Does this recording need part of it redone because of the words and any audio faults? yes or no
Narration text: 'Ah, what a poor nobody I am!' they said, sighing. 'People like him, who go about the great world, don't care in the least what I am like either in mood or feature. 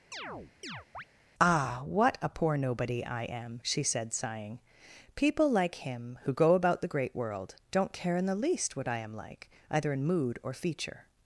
yes